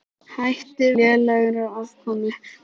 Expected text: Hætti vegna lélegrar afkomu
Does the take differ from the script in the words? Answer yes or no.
yes